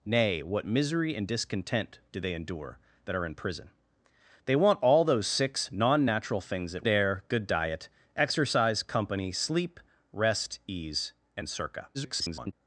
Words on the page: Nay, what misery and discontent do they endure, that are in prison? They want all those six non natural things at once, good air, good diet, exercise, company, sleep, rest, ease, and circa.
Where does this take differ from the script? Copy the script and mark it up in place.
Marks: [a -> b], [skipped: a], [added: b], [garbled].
Nay, what misery and discontent do they endure, that are in prison? They want all those six non natural things at [skipped: once, good] air, good diet, exercise, company, sleep, rest, ease, and circa. [garbled]